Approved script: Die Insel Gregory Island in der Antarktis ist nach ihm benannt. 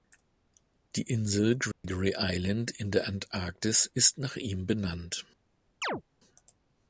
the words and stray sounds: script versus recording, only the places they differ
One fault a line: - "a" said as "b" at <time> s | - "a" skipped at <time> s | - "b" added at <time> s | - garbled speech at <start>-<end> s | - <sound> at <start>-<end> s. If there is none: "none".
- dropout at 1.7-1.8 s
- chirp at 5.8-6.0 s